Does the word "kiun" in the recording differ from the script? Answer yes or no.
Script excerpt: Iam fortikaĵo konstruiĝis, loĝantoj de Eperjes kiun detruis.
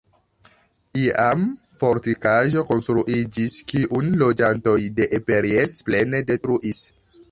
yes